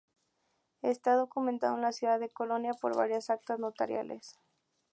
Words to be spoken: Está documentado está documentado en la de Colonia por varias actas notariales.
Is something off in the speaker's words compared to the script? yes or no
yes